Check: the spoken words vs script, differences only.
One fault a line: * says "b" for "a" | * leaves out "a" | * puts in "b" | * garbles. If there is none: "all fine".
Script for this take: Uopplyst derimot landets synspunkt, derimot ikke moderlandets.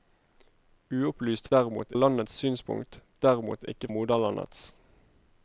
all fine